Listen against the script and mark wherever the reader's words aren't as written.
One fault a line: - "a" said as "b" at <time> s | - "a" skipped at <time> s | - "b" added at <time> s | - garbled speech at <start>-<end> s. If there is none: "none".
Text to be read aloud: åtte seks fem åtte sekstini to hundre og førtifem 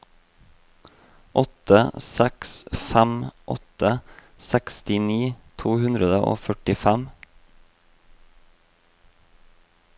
none